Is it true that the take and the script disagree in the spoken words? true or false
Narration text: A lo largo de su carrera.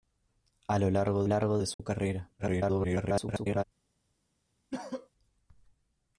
true